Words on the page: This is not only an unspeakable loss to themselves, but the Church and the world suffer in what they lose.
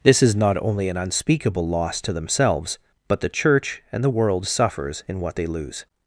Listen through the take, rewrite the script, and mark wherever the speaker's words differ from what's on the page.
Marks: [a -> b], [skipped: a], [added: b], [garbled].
This is not only an unspeakable loss to themselves, but the Church and the world [suffer -> suffers] in what they lose.